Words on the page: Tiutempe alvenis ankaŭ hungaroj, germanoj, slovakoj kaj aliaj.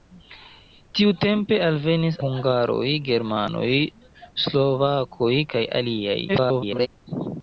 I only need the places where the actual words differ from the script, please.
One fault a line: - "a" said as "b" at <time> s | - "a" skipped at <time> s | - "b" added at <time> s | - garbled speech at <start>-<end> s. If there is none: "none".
- "ankaŭ" skipped at 2.2 s
- garbled speech at 6.3-6.9 s